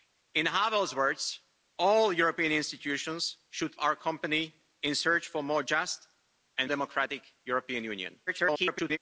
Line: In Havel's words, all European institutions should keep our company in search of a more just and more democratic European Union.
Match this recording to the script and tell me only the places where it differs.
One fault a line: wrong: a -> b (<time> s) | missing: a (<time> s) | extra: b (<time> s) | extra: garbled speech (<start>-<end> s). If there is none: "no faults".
missing: keep (3.8 s)
missing: more (6.7 s)
extra: garbled speech (8.3-9.0 s)